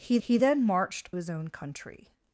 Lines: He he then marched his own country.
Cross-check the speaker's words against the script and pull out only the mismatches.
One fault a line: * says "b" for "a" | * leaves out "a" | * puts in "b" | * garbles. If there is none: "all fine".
all fine